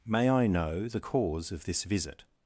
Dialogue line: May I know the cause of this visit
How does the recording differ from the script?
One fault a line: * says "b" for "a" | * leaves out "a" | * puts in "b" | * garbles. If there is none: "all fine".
all fine